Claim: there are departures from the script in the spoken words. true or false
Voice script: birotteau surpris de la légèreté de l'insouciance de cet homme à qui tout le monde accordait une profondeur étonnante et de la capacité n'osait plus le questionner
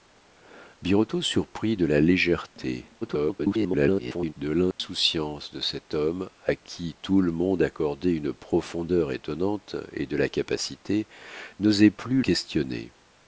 true